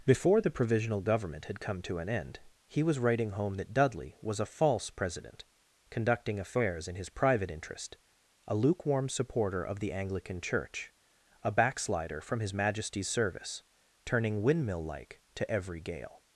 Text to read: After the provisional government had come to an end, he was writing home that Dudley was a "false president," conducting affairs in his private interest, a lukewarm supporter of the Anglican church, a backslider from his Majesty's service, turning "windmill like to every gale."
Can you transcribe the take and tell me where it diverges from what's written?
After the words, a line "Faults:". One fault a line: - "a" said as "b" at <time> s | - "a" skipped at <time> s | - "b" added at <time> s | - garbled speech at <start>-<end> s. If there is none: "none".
Before the provisional government had come to an end, he was writing home that Dudley was a "false president," conducting affairs in his private interest, a lukewarm supporter of the Anglican church, a backslider from his Majesty's service, turning "windmill like to every gale."
Faults:
- "After" said as "Before" at 0.0 s